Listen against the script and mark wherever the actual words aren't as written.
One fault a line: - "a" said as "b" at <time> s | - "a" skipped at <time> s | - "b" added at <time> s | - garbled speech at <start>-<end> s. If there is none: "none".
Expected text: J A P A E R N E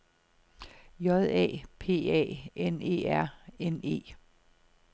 - "N" added at 2.5 s